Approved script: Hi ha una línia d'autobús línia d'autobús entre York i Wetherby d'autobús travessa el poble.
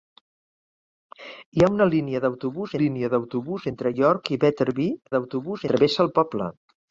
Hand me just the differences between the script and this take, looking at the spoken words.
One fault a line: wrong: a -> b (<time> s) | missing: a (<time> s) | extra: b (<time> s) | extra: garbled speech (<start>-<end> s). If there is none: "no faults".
no faults